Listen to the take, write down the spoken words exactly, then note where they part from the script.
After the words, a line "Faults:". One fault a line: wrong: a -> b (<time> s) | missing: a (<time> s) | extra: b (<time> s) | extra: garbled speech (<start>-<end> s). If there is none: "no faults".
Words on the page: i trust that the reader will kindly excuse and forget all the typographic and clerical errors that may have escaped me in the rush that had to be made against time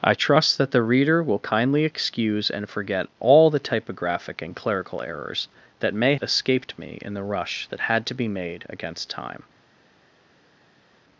i trust that the reader will kindly excuse and forget all the typographic and clerical errors that may escaped me in the rush that had to be made against time
Faults:
missing: have (6.2 s)